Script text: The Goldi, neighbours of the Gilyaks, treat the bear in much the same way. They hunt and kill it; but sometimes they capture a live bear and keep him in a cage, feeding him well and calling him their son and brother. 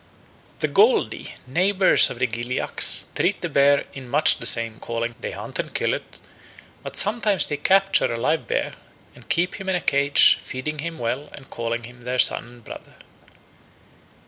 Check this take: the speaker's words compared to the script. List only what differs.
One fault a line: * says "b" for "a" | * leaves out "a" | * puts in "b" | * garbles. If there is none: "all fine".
* says "calling" for "way"